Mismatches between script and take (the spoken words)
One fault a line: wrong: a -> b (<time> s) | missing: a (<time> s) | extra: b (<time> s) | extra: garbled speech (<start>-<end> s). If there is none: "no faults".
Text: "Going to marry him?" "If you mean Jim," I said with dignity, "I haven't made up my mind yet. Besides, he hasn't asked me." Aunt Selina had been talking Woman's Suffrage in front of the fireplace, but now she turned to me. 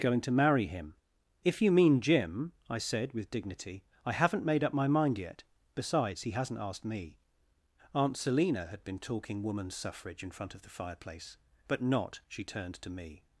wrong: now -> not (11.8 s)